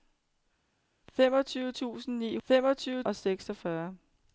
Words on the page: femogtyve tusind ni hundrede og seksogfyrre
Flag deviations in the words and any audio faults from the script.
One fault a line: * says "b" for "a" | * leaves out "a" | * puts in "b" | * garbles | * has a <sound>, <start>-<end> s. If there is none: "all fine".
* says "femogtyve" for "hundrede"